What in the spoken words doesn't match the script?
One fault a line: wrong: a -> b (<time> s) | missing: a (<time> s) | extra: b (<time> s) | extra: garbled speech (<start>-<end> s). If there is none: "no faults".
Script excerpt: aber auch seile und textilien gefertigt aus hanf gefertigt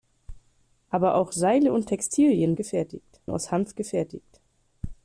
no faults